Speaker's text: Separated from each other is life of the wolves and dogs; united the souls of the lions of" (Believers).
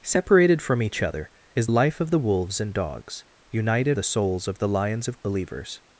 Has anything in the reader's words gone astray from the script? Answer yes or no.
no